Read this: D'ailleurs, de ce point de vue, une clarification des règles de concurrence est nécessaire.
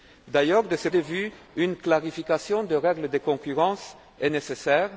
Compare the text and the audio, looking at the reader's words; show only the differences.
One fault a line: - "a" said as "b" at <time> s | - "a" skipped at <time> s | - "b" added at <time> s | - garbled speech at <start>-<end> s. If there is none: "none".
- "point" skipped at 0.9 s